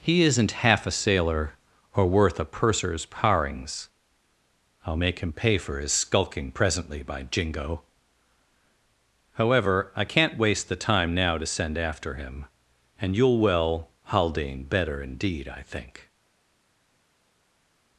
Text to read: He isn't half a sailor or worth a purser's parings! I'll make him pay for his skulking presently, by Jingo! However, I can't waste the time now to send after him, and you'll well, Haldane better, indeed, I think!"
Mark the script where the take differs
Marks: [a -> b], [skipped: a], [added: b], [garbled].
He isn't half a sailor or worth a purser's parings! I'll make him pay for his skulking presently, by Jingo! However, I can't waste the time now to send after him, and you'll well, Haldane better, indeed, I think!"